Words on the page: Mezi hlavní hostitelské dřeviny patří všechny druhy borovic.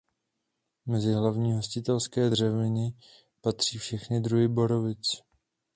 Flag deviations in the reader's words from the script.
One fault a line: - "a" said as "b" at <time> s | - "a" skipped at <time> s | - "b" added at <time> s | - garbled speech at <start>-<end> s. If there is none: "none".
none